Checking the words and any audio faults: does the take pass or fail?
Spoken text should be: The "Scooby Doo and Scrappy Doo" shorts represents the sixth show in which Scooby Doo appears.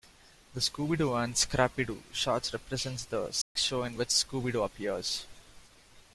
fail